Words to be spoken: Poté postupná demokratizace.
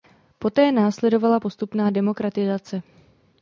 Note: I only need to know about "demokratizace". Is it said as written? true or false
true